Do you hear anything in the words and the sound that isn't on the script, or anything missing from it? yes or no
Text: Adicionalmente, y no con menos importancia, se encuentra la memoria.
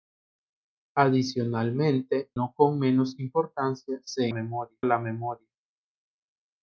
yes